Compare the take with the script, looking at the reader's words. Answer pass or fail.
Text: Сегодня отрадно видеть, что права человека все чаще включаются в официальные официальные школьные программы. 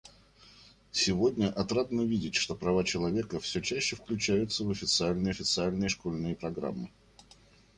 pass